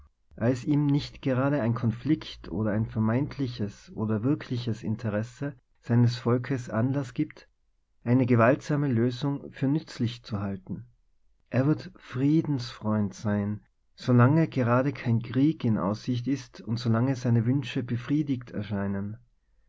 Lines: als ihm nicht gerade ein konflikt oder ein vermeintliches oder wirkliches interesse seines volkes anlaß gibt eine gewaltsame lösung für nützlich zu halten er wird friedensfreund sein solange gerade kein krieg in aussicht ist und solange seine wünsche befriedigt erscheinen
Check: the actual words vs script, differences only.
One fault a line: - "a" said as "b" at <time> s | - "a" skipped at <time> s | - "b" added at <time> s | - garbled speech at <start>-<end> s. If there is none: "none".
none